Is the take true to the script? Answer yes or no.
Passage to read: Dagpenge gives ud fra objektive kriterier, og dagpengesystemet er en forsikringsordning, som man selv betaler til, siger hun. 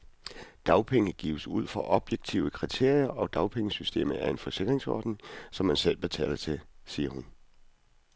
yes